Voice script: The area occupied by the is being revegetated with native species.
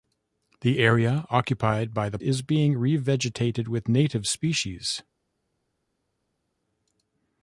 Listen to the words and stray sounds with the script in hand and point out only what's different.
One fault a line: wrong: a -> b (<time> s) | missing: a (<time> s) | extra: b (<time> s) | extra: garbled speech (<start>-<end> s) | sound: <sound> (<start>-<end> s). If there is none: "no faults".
no faults